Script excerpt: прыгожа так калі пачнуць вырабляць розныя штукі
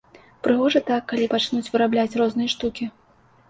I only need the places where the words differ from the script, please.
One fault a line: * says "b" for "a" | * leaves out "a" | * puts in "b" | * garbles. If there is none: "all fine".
all fine